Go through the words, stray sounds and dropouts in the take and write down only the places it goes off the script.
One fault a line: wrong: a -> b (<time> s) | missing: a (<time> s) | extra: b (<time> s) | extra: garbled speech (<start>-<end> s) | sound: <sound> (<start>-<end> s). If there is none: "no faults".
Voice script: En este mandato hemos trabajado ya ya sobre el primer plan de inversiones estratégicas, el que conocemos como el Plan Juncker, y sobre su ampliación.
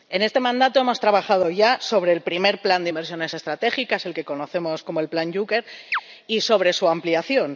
missing: ya (1.8 s)
sound: chirp (5.9-6.0 s)